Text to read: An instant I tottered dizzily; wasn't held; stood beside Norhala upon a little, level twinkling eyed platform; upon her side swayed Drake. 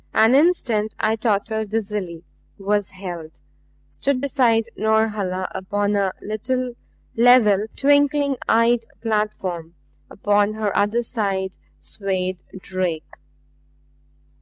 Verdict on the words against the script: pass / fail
fail